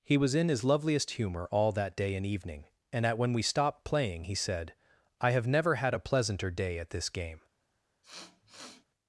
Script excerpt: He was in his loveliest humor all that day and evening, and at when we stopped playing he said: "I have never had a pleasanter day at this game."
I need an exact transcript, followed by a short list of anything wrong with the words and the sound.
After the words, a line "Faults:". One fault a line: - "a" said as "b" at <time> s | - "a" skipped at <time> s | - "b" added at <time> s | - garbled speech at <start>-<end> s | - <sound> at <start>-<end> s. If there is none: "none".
He was in his loveliest humor all that day and evening, and at when we stopped playing he said: "I have never had a pleasanter day at this game."
Faults:
- sniff at 8.0-8.8 s